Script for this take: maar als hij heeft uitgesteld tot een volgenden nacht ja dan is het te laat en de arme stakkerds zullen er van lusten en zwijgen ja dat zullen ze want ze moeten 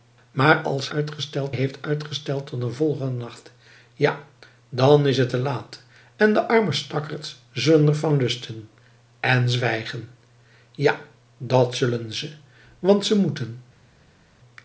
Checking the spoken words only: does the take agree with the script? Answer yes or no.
no